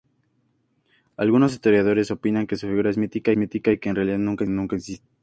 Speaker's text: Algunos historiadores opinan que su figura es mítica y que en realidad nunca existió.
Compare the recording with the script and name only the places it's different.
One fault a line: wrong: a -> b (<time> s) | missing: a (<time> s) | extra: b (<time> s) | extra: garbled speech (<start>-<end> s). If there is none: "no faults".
extra: mítica (3.4 s)
extra: nunca (4.5 s)